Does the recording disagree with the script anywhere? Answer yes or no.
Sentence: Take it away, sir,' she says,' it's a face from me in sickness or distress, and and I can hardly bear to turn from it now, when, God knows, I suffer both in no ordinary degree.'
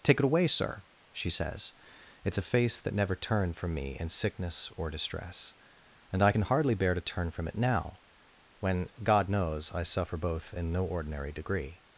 yes